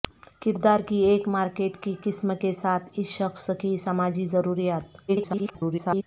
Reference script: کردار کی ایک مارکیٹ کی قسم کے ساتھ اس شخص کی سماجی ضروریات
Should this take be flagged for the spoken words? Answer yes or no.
yes